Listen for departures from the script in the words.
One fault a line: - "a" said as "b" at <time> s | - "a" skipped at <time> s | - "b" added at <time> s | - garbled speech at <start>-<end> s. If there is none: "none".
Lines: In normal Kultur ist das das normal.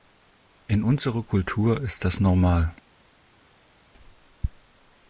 - "normal" said as "unserer" at 0.8 s
- "das" skipped at 2.2 s